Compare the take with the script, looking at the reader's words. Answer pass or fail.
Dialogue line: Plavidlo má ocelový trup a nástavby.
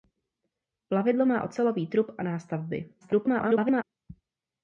fail